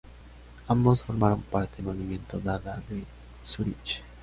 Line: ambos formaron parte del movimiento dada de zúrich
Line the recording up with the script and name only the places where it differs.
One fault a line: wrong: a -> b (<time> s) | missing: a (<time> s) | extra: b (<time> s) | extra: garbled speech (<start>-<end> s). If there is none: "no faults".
missing: del (1.8 s)